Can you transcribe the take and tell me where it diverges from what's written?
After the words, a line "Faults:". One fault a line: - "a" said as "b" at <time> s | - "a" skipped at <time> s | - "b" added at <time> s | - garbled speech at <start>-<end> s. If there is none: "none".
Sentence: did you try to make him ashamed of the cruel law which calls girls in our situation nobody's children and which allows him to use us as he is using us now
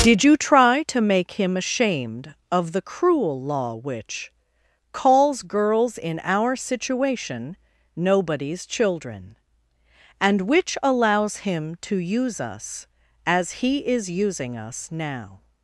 did you try to make him ashamed of the cruel law which calls girls in our situation nobody's children and which allows him to use us as he is using us now
Faults:
none